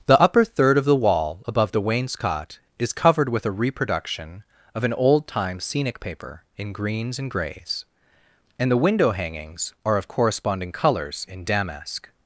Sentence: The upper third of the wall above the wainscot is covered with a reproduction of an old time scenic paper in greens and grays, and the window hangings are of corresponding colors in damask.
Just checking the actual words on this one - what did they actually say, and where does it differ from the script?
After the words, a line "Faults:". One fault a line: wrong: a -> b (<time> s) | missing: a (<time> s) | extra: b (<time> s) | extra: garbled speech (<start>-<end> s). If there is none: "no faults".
The upper third of the wall above the wainscot is covered with a reproduction of an old time scenic paper in greens and grays, and the window hangings are of corresponding colors in damask.
Faults:
no faults